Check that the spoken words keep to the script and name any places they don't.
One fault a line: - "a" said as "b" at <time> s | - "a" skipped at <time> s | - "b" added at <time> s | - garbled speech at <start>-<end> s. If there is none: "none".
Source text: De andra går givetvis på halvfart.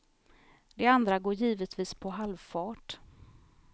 none